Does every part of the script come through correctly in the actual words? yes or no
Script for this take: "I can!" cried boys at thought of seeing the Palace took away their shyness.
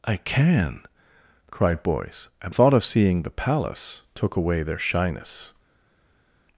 yes